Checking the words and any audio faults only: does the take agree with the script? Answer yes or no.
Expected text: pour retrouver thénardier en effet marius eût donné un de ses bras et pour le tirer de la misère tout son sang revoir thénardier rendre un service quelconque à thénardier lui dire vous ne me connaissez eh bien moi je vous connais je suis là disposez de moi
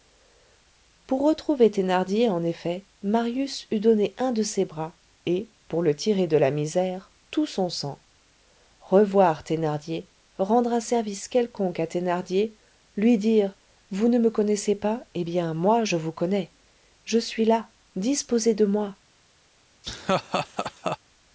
no